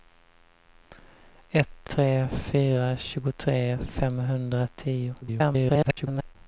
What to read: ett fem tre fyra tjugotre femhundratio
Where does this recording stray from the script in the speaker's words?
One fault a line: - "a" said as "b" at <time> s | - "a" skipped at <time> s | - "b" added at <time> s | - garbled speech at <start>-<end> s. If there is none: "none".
- "fem" skipped at 1.9 s
- garbled speech at 5.2-6.4 s